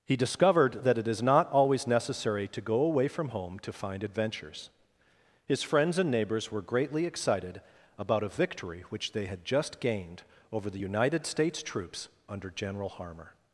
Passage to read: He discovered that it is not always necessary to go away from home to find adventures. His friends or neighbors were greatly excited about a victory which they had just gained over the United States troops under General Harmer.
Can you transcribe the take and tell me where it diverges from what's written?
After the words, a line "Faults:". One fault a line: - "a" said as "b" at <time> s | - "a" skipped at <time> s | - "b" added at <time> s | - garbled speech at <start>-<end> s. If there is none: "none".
He discovered that it is not always necessary to go away from home to find adventures. His friends and neighbors were greatly excited about a victory which they had just gained over the United States troops under General Harmer.
Faults:
- "or" said as "and" at 6.0 s